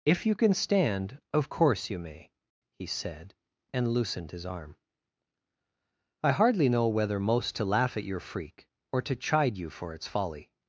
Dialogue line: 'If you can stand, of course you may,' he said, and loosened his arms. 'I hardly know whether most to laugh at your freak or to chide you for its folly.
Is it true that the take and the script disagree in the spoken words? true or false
true